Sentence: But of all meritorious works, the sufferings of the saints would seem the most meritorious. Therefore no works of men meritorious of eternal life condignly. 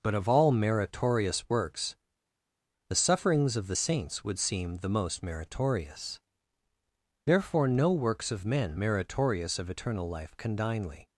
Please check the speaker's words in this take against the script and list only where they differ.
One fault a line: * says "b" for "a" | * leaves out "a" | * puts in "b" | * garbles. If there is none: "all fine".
all fine